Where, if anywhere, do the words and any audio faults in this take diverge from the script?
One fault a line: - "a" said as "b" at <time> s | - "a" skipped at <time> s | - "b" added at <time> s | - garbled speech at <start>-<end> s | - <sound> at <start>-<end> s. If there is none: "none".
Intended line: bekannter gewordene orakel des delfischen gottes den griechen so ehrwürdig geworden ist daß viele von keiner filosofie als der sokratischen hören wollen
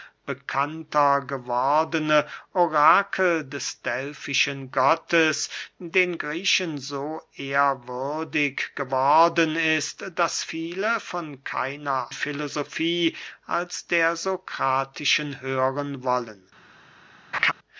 - laugh at 17.3-17.5 s